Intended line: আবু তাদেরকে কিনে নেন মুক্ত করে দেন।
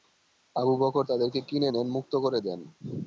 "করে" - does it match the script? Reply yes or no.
yes